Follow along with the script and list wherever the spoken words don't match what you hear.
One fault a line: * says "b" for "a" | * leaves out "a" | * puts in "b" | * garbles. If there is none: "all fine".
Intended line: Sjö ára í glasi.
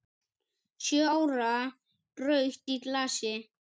* puts in "rautt"